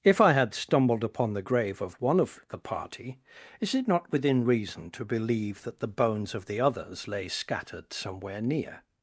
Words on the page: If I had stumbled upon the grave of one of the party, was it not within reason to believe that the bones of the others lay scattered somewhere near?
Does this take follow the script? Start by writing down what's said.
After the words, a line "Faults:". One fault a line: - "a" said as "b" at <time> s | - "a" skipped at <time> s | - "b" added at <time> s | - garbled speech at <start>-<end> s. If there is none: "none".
If I had stumbled upon the grave of one of the party, is it not within reason to believe that the bones of the others lay scattered somewhere near?
Faults:
- "was" said as "is" at 3.6 s